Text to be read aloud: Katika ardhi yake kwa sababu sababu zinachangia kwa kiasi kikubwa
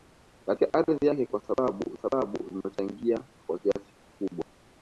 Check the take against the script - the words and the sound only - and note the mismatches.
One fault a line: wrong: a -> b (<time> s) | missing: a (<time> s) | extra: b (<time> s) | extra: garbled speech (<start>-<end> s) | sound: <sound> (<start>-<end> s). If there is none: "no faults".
no faults